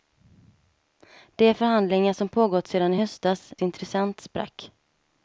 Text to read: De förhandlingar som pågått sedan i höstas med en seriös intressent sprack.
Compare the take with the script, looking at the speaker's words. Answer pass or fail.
fail